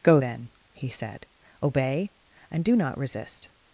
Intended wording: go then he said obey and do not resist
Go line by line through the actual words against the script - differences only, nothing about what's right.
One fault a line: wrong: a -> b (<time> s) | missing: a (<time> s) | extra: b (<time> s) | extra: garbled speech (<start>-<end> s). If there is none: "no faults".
no faults